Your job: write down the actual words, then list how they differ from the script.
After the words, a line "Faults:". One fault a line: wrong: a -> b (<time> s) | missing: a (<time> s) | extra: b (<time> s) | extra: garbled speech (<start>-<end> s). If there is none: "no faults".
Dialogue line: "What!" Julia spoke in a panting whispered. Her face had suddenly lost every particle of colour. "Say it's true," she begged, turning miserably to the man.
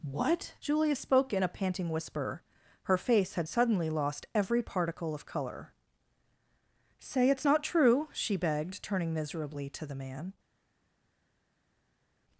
"What!" Julia spoke in a panting whisper. Her face had suddenly lost every particle of colour. "Say it's not true," she begged, turning miserably to the man.
Faults:
wrong: whispered -> whisper (1.9 s)
extra: not (7.5 s)